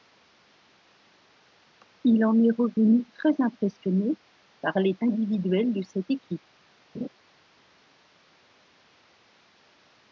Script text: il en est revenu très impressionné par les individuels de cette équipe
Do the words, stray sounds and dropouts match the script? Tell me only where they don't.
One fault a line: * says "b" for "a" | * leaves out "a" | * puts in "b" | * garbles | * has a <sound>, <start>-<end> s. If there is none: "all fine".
* has a laugh, 6.9-7.1 s